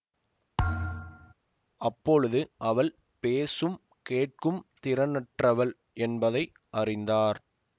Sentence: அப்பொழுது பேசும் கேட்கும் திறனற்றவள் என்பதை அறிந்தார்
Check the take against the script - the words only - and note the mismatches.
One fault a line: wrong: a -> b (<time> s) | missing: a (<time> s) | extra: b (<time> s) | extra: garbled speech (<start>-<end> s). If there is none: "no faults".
extra: அவள் (2.6 s)